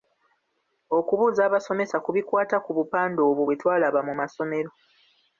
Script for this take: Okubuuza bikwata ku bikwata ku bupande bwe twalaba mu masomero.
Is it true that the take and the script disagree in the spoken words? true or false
true